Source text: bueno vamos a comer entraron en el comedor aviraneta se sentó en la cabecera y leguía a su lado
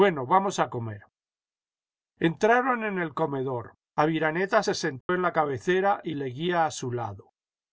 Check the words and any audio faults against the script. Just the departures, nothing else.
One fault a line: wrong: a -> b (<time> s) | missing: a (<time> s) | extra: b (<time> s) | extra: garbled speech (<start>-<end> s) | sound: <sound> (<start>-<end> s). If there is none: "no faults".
sound: dropout (5.0-5.1 s)